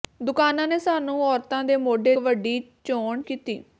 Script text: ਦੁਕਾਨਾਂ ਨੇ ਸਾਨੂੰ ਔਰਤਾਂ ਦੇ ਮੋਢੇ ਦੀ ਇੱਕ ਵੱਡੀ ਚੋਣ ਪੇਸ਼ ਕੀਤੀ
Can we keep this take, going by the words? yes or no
no